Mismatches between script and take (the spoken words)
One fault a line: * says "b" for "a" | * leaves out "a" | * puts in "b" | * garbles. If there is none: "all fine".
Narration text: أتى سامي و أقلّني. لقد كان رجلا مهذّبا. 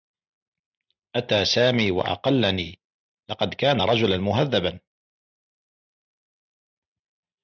all fine